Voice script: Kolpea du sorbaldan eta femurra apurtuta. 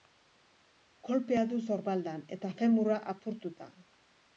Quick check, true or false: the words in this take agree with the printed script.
true